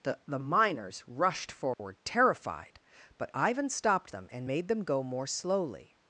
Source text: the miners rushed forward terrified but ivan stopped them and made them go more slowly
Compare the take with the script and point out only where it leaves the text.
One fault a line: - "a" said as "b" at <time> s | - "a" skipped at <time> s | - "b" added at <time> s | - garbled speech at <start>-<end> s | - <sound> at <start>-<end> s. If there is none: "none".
- "the" added at 0.2 s
- dropout at 1.7-1.8 s